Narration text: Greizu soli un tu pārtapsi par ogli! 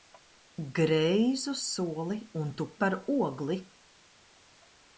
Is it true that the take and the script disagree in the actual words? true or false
true